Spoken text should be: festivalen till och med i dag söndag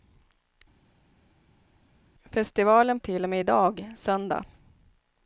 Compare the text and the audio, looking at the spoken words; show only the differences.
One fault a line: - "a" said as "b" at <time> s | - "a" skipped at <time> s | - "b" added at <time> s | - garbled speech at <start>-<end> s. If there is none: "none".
none